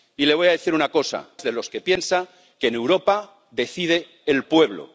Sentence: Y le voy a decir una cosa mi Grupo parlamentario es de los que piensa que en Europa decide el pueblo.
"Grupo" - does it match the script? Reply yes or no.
no